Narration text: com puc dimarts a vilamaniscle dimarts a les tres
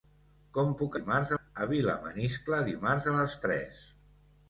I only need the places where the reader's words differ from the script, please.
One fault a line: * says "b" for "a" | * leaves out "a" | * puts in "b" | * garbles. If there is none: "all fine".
all fine